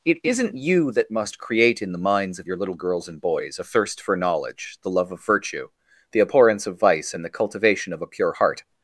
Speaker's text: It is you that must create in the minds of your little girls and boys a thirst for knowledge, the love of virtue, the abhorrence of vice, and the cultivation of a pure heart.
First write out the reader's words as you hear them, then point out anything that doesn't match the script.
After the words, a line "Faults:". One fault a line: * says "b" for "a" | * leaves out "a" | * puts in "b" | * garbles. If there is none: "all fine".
It isn't you that must create in the minds of your little girls and boys a thirst for knowledge, the love of virtue, the abhorrence of vice, and the cultivation of a pure heart.
Faults:
* says "isn't" for "is"